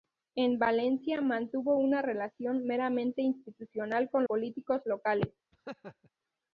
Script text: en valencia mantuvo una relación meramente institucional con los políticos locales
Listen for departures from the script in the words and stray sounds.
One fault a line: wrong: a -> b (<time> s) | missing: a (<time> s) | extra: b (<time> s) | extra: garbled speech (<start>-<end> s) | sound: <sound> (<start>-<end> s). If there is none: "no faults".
missing: los (4.2 s)
sound: laugh (5.5-6.1 s)